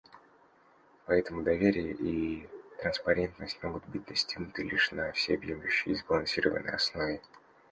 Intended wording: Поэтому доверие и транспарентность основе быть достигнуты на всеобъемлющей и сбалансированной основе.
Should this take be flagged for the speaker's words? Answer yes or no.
yes